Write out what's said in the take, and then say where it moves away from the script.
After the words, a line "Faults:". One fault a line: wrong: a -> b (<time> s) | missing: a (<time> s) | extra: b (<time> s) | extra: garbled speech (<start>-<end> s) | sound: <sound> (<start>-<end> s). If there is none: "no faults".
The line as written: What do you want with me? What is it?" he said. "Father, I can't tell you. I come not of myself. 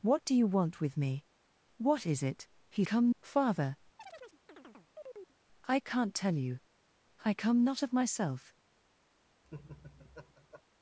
What do you want with me? What is it?" he come. "Father, I can't tell you. I come not of myself.
Faults:
wrong: said -> come (2.8 s)
sound: chirp (4.0-5.3 s)
sound: laugh (9.4-10.6 s)